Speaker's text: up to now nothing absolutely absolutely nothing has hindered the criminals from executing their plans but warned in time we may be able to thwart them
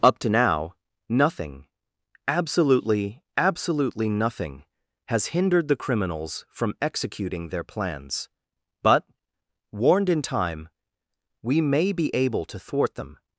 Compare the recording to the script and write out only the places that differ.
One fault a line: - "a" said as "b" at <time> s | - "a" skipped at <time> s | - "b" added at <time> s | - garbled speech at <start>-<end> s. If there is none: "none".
none